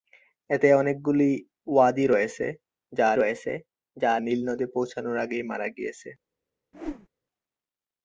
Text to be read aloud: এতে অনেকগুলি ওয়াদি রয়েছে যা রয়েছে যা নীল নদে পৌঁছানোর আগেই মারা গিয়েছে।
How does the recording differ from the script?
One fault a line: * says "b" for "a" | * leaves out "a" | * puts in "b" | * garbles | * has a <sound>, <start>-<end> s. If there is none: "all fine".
* has a whoosh, 6.7-7.1 s